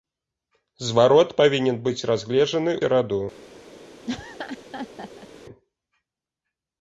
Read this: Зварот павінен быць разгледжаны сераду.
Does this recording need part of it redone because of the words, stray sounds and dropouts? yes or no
yes